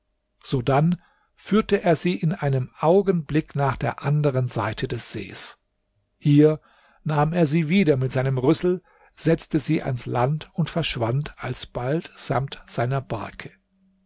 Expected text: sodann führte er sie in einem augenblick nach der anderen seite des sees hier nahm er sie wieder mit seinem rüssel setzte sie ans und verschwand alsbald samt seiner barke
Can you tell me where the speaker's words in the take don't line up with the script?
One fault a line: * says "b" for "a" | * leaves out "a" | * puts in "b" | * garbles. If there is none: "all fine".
* puts in "land"